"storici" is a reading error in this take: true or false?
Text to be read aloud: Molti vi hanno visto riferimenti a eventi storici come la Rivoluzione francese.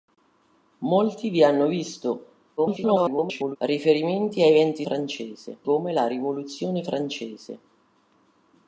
true